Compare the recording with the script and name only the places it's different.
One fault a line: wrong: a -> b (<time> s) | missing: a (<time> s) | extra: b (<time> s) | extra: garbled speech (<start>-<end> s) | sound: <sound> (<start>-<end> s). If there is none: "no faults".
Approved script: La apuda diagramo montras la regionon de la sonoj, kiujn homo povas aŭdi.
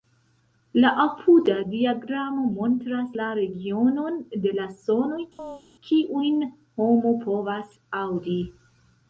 sound: chirp (5.4-5.6 s)